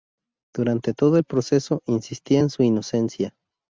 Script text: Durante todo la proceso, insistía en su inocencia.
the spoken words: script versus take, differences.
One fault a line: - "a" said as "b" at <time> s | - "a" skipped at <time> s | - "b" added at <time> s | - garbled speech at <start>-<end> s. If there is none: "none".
- "la" said as "el" at 1.1 s